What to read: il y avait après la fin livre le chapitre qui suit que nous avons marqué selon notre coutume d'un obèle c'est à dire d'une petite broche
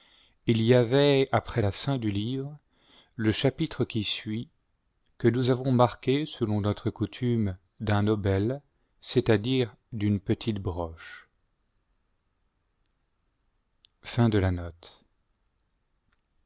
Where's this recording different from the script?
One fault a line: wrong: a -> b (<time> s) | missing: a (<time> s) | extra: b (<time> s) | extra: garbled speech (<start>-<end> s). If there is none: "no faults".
extra: du (2.0 s)